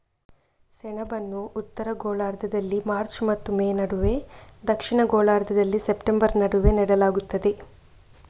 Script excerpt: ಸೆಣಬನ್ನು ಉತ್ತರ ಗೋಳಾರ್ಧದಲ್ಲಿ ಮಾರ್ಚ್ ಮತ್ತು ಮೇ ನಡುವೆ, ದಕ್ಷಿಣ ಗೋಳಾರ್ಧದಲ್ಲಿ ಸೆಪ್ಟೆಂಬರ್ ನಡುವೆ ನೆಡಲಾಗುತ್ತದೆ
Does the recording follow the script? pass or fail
pass